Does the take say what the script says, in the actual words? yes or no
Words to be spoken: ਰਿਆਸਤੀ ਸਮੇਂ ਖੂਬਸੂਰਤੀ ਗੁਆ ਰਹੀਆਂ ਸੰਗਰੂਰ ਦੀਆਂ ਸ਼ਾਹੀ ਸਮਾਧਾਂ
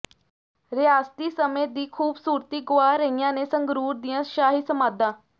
no